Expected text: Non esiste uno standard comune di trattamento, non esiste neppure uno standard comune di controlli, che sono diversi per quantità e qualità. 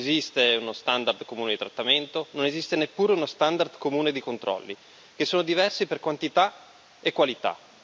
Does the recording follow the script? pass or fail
pass